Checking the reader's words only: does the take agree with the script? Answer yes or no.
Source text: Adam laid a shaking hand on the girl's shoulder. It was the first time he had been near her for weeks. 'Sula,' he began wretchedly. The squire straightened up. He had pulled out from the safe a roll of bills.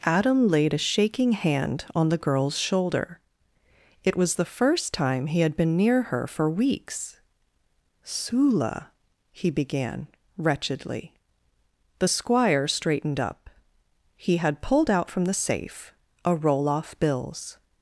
no